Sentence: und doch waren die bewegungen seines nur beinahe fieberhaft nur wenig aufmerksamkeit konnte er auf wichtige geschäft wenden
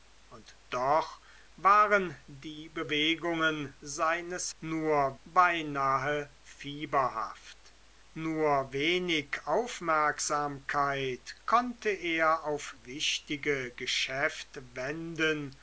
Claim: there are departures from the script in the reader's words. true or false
false